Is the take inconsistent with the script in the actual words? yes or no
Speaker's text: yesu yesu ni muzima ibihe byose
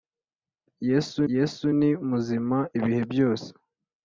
no